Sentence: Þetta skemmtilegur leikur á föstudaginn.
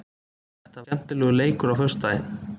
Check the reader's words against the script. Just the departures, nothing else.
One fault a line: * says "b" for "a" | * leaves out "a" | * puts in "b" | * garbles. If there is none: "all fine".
all fine